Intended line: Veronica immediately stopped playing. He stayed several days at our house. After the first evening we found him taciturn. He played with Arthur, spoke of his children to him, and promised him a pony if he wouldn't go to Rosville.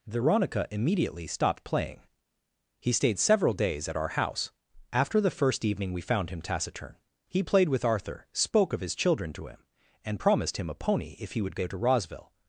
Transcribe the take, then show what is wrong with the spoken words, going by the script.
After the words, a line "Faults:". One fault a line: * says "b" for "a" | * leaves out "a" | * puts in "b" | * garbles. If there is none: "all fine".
Veronica immediately stopped playing. He stayed several days at our house. After the first evening we found him taciturn. He played with Arthur, spoke of his children to him, and promised him a pony if he would go to Rosville.
Faults:
* says "would" for "wouldn't"